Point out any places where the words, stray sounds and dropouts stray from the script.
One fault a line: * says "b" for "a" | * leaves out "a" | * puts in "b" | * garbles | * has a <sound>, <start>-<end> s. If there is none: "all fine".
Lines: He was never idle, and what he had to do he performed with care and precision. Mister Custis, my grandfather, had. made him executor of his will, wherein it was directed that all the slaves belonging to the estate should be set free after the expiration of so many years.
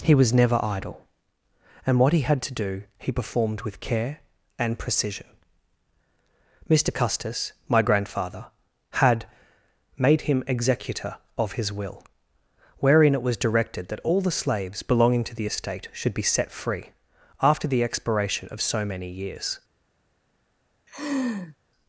* has a laugh, 20.9-21.6 s